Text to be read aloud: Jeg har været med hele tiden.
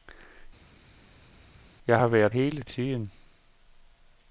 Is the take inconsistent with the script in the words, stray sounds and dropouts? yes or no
yes